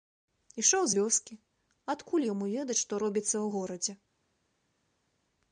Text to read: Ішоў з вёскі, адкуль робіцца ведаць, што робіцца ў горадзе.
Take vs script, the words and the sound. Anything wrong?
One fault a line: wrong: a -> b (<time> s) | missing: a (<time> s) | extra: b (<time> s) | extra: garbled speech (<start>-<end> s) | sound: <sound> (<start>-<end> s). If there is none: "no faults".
wrong: робіцца -> яму (2.3 s)